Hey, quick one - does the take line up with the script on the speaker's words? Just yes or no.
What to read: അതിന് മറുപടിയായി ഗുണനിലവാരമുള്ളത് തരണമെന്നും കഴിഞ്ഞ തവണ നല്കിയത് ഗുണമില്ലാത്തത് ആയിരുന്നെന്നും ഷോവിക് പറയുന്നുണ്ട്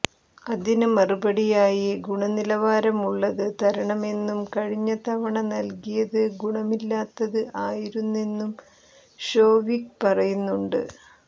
yes